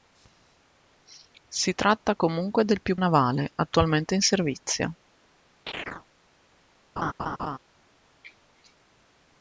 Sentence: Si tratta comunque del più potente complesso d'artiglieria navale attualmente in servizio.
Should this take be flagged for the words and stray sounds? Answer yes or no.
yes